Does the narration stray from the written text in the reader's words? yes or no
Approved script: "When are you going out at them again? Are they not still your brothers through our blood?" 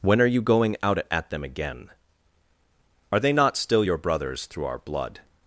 no